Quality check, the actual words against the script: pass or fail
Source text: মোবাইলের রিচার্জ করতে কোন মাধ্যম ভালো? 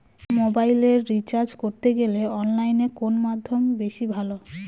fail